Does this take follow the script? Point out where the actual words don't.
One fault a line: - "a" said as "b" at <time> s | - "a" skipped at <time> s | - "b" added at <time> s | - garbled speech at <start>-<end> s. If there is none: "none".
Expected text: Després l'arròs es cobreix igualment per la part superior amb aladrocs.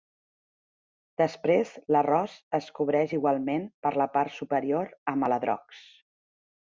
none